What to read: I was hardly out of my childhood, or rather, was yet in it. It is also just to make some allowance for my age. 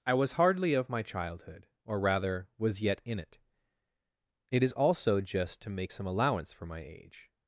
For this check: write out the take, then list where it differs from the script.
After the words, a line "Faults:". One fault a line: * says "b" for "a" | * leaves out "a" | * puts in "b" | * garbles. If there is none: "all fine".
I was hardly of my childhood, or rather, was yet in it. It is also just to make some allowance for my age.
Faults:
* leaves out "out"